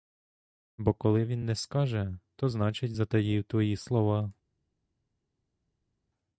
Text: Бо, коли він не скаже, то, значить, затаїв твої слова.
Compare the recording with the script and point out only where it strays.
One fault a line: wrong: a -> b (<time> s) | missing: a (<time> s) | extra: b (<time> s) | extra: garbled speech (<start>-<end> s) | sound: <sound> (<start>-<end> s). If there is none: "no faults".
no faults